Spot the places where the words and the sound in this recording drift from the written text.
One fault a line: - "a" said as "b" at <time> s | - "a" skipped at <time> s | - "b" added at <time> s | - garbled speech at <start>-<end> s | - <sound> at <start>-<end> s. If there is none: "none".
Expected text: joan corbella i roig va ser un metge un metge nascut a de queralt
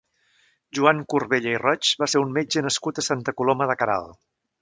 - "un metge nascut a" said as "nascut a santa coloma" at 2.7 s